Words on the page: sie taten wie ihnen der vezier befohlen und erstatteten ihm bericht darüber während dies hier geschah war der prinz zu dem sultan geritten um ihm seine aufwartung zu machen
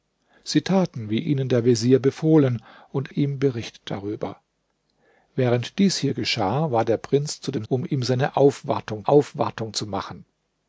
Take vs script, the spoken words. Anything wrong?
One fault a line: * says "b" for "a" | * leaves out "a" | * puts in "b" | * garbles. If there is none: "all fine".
* leaves out "erstatteten"
* leaves out "sultan geritten"
* puts in "aufwartung"